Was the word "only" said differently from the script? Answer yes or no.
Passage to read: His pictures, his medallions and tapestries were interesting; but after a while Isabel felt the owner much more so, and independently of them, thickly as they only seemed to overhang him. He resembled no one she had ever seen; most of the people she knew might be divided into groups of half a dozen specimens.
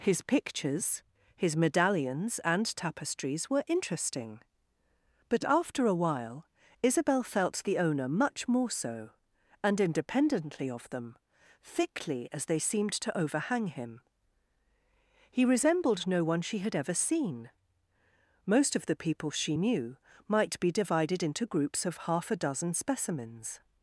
yes